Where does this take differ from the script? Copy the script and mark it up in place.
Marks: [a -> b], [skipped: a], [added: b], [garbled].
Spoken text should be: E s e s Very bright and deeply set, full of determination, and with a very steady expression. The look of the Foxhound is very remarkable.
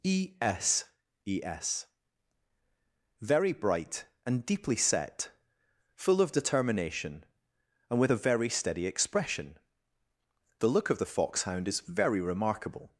E s e s Very bright and deeply set, full of determination, and with a very steady expression. The look of the Foxhound is very remarkable.